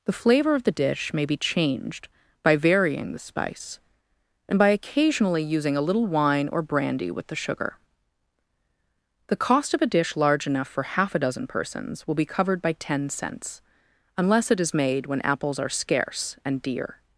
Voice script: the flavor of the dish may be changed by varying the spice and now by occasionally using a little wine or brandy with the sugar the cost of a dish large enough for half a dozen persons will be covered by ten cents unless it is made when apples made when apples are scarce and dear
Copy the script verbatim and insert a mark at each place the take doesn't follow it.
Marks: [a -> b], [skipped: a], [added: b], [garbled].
the flavor of the dish may be changed by varying the spice and [skipped: now] by occasionally using a little wine or brandy with the sugar the cost of a dish large enough for half a dozen persons will be covered by ten cents unless it is made when apples [skipped: made when apples] are scarce and dear